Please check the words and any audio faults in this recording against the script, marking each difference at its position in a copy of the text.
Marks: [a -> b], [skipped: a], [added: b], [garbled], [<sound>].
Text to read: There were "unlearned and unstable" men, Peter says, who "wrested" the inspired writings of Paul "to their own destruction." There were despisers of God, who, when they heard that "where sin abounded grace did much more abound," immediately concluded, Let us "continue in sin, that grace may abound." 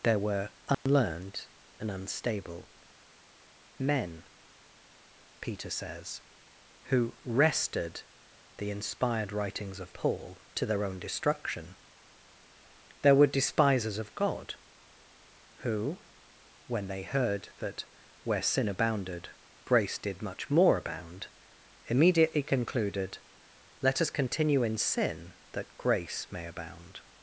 There were "unlearned [dropout] and unstable" men, Peter says, who "wrested" the inspired writings of Paul "to their own destruction." There were despisers of God, who, when they heard that "where sin abounded grace did much more abound," immediately concluded, Let us "continue in sin, that grace may abound."